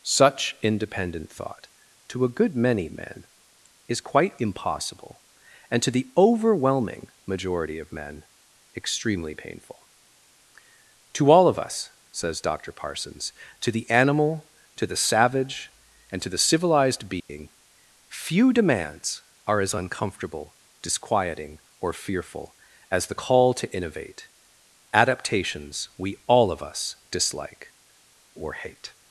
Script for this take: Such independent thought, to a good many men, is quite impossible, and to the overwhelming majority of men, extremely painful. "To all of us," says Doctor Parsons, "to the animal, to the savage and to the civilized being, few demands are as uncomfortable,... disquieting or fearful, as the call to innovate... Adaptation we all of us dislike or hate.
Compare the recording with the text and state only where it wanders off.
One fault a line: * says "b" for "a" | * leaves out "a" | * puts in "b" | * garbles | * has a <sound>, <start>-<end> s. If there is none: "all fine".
* has a dropout, 17.2-17.3 s
* says "Adaptations" for "Adaptation"